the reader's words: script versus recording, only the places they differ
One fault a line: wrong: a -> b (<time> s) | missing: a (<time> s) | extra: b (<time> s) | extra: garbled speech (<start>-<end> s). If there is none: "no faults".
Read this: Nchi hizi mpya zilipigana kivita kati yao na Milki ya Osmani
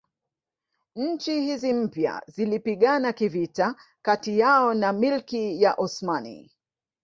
no faults